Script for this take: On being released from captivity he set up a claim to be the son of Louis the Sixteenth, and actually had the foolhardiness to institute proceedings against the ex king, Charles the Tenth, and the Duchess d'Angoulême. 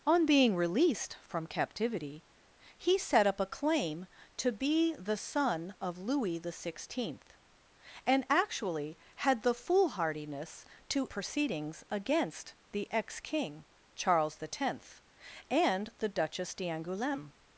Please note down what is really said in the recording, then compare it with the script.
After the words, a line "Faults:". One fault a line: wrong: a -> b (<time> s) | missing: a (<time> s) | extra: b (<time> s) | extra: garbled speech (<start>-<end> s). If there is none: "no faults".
On being released from captivity he set up a claim to be the son of Louis the Sixteenth, and actually had the foolhardiness to proceedings against the ex king, Charles the Tenth, and the Duchess d'Angoulême.
Faults:
missing: institute (11.1 s)